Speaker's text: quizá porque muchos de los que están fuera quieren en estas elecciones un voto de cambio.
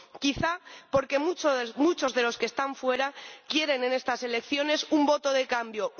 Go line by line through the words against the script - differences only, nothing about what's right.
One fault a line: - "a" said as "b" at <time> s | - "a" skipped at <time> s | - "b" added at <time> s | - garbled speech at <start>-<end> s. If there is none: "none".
none